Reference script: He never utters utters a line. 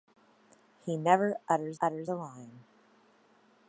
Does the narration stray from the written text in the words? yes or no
no